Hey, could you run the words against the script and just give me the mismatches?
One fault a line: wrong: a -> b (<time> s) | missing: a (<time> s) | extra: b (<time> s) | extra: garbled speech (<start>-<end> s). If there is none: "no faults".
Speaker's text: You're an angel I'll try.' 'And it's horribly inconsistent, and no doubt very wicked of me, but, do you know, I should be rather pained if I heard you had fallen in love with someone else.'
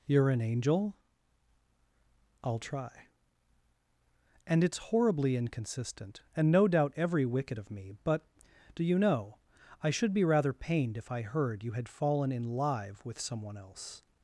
wrong: very -> every (7.0 s)
wrong: love -> live (12.4 s)